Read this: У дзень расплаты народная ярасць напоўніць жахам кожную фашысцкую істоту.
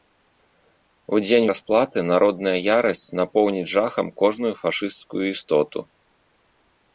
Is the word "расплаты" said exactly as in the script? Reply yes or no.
yes